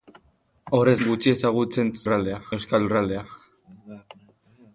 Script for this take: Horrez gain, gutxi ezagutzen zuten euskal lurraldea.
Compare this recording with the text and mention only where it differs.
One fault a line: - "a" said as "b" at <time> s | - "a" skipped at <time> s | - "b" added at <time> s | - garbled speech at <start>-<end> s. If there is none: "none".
- "gain" skipped at 0.9 s
- "zuten" said as "lurraldea" at 2.0 s